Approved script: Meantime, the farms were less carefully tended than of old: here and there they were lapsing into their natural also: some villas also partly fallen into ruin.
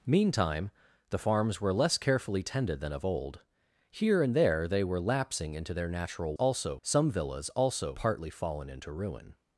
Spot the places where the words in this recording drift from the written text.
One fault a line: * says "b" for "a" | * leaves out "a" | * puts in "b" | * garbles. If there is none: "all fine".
all fine